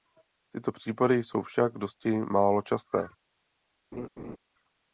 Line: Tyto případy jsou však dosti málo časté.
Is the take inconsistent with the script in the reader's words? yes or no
no